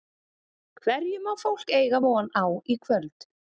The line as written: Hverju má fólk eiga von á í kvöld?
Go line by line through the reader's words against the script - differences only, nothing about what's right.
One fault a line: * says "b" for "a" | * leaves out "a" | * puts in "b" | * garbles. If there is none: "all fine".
all fine